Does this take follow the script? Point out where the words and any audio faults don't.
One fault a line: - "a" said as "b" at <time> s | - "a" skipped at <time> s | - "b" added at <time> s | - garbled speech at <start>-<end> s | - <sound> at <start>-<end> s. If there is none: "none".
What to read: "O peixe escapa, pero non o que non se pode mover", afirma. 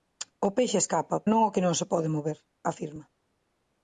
- "pero" skipped at 1.2 s